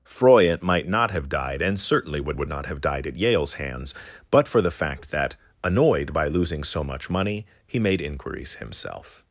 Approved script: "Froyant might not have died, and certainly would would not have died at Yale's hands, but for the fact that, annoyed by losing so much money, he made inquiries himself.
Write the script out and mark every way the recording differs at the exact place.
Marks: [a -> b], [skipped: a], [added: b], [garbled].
"Froyant might not have died, and certainly would would not have died at Yale's hands, but for the fact that, annoyed by losing so much money, he made inquiries himself.